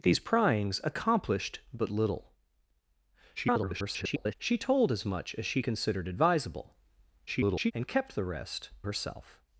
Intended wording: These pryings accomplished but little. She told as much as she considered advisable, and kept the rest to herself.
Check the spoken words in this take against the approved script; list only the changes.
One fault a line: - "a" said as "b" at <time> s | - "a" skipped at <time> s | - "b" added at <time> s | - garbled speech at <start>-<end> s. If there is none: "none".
- garbled speech at 3.4-4.3 s
- garbled speech at 7.3-7.7 s
- "to" skipped at 8.7 s